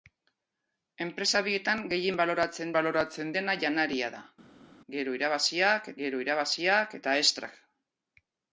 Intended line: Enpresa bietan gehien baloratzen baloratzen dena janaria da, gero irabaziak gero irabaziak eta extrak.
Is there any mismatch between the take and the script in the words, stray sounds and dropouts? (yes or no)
no